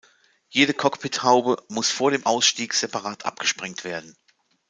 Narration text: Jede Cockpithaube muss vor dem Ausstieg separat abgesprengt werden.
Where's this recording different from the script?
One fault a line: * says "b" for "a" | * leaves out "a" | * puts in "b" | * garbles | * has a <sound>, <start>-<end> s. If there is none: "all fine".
all fine